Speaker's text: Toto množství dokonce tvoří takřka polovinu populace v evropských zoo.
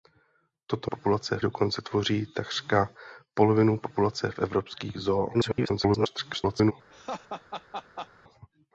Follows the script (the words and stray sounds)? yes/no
no